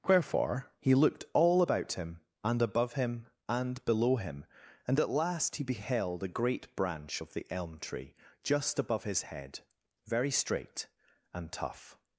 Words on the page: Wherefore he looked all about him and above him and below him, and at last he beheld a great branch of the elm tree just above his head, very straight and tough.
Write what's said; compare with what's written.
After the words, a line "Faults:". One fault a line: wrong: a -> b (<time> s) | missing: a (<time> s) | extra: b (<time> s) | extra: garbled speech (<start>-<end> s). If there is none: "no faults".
Wherefore he looked all about him and above him and below him, and at last he beheld a great branch of the elm tree just above his head, very straight and tough.
Faults:
no faults